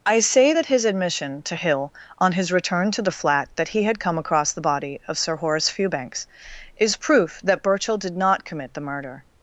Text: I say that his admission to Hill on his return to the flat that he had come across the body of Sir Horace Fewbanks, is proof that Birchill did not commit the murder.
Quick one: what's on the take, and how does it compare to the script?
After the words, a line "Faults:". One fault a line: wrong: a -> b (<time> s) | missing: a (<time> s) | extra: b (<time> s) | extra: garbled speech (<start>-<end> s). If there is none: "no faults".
I say that his admission to Hill on his return to the flat that he had come across the body of Sir Horace Fewbanks, is proof that Birchill did not commit the murder.
Faults:
no faults